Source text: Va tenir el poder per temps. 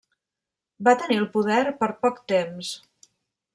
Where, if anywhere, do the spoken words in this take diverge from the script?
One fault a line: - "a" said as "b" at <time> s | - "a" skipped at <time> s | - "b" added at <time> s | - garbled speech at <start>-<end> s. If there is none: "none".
- "poc" added at 2.1 s